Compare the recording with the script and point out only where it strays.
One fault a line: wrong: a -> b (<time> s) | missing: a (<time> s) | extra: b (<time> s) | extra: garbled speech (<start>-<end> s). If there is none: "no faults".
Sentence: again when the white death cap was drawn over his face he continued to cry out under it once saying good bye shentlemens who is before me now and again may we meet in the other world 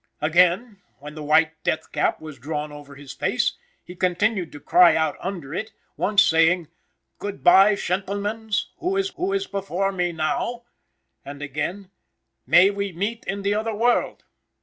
extra: who is (9.2 s)